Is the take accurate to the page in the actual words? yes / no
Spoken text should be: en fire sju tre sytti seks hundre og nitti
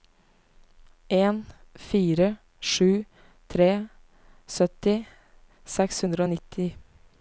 yes